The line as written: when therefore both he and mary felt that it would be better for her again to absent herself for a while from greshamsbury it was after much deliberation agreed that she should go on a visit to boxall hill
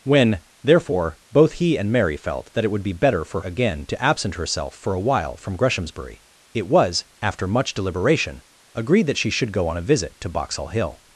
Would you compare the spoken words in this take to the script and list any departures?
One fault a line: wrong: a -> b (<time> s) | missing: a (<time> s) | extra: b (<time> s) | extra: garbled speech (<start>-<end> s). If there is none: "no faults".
missing: her (3.4 s)